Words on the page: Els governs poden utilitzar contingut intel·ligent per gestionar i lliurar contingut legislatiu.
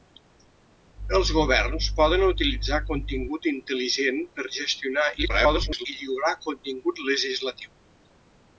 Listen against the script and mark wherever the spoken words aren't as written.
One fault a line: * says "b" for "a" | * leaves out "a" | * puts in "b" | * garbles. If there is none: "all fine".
* garbles